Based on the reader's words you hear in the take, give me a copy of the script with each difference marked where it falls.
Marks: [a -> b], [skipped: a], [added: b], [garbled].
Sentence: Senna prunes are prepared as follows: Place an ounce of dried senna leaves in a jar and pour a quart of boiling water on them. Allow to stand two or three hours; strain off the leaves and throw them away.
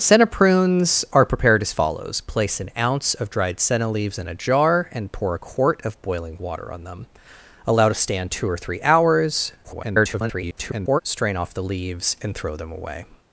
Senna prunes are prepared as follows: Place an ounce of dried senna leaves in a jar and pour a quart of boiling water on them. Allow to stand two or three hours; [garbled] strain off the leaves and throw them away.